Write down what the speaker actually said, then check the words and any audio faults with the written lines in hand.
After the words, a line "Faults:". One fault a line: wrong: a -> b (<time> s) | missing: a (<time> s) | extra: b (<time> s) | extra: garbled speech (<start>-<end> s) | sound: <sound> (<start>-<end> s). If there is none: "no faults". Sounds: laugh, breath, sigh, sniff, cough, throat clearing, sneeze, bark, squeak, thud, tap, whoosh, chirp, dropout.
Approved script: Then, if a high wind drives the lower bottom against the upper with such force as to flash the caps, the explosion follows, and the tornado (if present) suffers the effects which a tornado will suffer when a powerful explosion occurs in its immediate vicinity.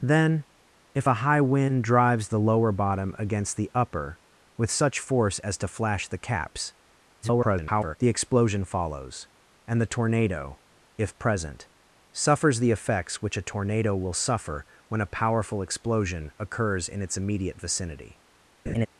Then, if a high wind drives the lower bottom against the upper with such force as to flash the caps, [garbled] the explosion follows, and the tornado (if present) suffers the effects which a tornado will suffer when a powerful explosion occurs in its immediate vicinity.
Faults:
extra: garbled speech (7.2-8.0 s)
sound: laugh (18.7-18.9 s)